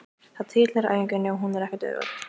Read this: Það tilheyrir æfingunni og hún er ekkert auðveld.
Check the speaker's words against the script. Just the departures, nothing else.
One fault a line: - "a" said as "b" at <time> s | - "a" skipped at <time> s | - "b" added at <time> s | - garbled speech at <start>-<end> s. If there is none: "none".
none